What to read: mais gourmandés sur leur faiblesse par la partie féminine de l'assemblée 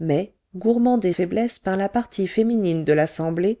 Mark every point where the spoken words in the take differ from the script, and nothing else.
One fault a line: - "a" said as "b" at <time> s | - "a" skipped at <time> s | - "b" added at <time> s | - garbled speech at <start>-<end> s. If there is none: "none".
- "sur leur" skipped at 1.1 s